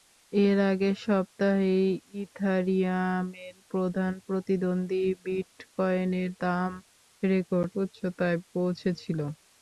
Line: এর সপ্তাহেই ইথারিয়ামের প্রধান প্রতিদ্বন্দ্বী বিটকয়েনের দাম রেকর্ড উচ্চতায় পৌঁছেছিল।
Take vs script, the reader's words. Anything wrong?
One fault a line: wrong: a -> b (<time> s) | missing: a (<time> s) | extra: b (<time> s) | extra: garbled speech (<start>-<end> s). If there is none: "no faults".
extra: আগের (0.7 s)